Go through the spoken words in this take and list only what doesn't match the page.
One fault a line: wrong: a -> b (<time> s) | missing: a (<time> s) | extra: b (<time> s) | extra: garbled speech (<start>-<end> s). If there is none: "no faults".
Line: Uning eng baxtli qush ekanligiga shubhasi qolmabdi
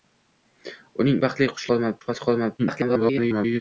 missing: eng (1.2 s)
wrong: ekanligiga -> qolmabdi (1.7 s)
extra: garbled speech (2.6-3.6 s)